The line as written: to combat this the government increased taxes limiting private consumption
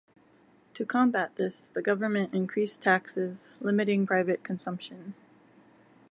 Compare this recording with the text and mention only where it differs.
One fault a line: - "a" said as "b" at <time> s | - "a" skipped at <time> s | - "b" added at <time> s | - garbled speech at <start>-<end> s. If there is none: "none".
none